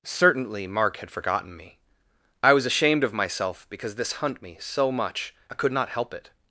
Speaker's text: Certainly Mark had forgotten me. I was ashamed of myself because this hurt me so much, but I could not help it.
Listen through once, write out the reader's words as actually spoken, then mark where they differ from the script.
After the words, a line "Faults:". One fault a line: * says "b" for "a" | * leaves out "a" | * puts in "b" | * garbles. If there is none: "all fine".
Certainly Mark had forgotten me. I was ashamed of myself because this hunt me so much, I could not help it.
Faults:
* says "hunt" for "hurt"
* leaves out "but"